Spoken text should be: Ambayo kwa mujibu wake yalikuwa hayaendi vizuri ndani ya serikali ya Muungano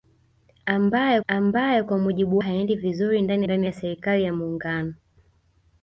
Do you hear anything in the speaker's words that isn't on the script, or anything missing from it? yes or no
yes